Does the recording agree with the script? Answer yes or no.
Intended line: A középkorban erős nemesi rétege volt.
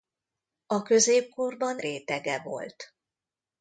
no